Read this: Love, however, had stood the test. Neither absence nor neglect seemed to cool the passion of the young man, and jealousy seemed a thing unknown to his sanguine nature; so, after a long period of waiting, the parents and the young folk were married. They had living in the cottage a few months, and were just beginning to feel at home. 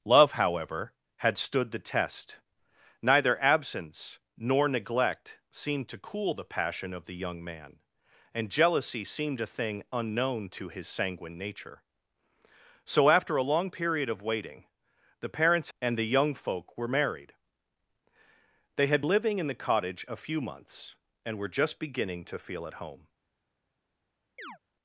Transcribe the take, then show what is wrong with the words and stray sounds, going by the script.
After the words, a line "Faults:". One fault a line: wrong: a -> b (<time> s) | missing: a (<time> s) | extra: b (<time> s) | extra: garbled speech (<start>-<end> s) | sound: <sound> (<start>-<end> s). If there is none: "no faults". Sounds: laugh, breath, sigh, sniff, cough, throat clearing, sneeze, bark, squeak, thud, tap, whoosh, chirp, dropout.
Love, however, had stood the test. Neither absence nor neglect seemed to cool the passion of the young man, and jealousy seemed a thing unknown to his sanguine nature; so, after a long period of waiting, the parents and the young folk were married. They had living in the cottage a few months, and were just beginning to feel at home.
Faults:
sound: chirp (24.4-24.6 s)